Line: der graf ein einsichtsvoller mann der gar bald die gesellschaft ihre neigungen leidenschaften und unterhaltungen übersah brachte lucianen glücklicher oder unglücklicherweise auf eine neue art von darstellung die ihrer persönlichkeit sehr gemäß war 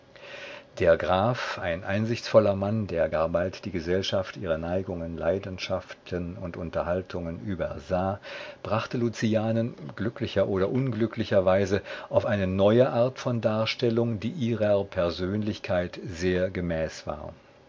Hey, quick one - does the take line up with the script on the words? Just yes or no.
yes